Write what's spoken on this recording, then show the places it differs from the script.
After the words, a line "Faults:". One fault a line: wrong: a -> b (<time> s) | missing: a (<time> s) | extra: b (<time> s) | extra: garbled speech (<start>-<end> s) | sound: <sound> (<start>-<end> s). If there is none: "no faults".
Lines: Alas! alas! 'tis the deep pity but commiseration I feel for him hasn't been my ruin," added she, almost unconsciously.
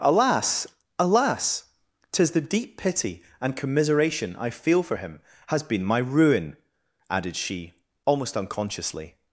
Alas! alas! 'tis the deep pity and commiseration I feel for him has been my ruin," added she, almost unconsciously.
Faults:
wrong: but -> and (3.4 s)
wrong: hasn't -> has (5.5 s)